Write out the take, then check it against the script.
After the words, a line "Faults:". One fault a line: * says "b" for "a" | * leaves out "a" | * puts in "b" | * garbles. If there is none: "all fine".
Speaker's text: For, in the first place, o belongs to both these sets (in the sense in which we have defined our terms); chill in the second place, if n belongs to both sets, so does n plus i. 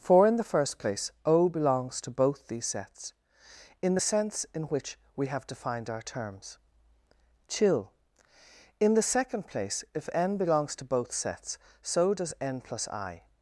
For, in the first place, o belongs to both these sets (in the sense in which we have defined our terms); chill in the second place, if n belongs to both sets, so does n plus i.
Faults:
all fine